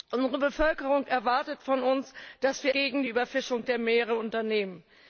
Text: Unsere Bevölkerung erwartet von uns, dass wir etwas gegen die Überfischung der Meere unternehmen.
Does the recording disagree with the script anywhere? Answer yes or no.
yes